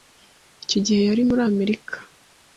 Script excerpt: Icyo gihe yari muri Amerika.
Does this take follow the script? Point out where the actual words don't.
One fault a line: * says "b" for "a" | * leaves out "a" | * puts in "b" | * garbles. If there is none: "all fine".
all fine